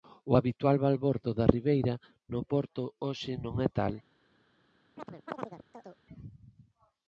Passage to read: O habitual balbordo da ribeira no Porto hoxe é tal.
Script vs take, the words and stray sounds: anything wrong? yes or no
yes